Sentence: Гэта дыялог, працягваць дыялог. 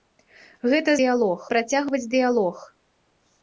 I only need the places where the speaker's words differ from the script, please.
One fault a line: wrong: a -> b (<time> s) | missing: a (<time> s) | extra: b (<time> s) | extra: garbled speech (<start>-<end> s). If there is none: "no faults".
no faults